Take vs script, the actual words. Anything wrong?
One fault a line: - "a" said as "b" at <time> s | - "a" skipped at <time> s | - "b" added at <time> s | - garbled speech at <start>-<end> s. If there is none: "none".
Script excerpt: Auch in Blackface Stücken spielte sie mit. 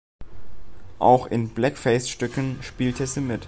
none